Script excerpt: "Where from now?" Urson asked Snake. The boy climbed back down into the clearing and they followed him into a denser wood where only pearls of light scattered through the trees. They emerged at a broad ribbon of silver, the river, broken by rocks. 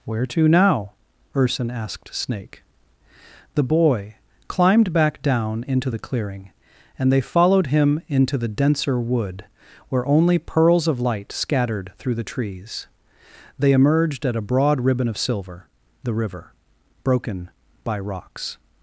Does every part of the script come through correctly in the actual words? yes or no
no